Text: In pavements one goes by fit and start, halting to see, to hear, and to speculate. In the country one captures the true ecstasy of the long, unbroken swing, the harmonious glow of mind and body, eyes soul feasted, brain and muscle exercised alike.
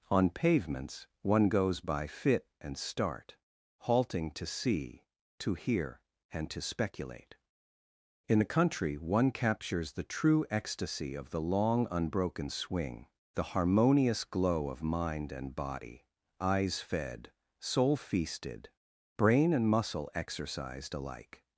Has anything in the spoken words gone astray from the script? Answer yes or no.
yes